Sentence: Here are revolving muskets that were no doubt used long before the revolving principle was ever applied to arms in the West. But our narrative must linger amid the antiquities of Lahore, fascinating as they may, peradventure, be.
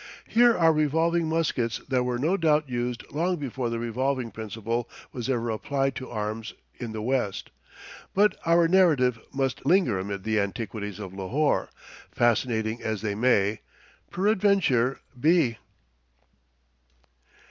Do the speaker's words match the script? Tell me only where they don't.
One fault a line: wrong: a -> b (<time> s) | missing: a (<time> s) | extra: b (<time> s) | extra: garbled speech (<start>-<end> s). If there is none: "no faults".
no faults